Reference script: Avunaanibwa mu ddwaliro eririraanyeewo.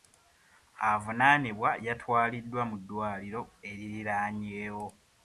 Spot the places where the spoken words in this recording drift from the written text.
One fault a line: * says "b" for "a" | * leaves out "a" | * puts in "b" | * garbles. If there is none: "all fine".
* puts in "yatwaliddwa"